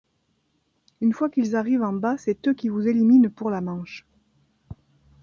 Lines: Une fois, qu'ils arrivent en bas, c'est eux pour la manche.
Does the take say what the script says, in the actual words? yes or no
no